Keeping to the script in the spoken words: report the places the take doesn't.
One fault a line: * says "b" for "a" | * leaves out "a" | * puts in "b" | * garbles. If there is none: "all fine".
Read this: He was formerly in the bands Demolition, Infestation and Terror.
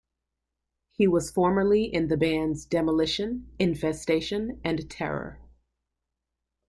all fine